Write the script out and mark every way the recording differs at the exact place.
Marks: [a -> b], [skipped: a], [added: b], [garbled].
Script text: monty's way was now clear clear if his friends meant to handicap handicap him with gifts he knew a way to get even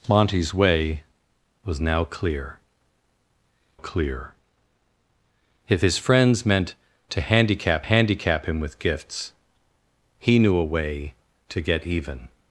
monty's way was now clear clear if his friends meant to handicap handicap him with gifts he knew a way to get even